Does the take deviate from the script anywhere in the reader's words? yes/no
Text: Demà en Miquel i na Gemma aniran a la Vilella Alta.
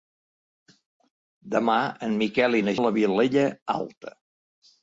yes